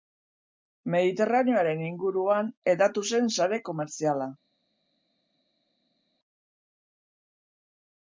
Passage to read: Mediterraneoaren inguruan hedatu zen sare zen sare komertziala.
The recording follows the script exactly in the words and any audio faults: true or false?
false